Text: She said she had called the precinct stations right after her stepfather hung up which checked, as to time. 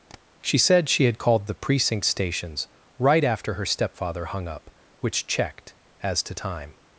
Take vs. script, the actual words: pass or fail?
pass